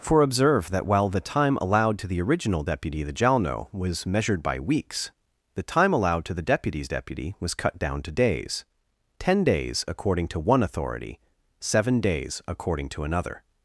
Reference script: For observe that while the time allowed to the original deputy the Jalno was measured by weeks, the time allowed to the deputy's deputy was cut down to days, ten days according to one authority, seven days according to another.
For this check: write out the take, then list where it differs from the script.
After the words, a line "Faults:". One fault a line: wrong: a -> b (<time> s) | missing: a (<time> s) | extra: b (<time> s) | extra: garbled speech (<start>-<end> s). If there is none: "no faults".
For observe that while the time allowed to the original deputy the Jalno was measured by weeks, the time allowed to the deputy's deputy was cut down to days, ten days according to one authority, seven days according to another.
Faults:
no faults